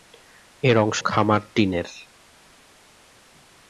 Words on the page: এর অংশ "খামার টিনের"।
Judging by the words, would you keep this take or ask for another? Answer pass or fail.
pass